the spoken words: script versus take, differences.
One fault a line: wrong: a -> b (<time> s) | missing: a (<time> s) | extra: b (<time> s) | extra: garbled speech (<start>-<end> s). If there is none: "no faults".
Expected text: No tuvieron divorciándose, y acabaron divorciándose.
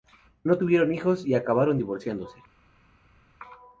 wrong: divorciándose -> hijos (0.9 s)